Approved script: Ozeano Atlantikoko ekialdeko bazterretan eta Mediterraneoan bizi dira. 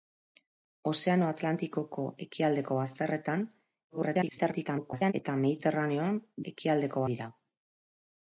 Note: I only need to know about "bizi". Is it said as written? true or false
false